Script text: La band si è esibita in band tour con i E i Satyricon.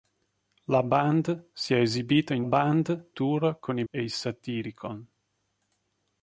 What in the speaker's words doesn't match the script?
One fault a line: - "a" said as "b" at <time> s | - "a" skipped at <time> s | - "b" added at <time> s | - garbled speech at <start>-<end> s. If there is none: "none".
none